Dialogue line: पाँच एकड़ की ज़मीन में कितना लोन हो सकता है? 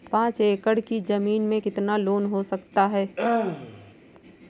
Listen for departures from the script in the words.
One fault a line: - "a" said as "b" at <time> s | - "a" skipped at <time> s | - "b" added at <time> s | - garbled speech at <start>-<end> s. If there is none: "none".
none